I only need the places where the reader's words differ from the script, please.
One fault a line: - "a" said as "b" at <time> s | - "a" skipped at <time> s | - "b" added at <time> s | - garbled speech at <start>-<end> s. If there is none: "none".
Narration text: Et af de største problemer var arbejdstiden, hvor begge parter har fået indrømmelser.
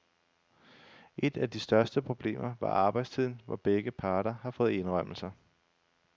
none